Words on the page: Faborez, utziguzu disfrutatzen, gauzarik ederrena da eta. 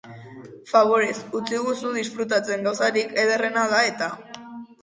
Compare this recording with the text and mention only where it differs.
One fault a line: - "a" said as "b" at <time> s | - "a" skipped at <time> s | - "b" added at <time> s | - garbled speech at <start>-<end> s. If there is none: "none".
none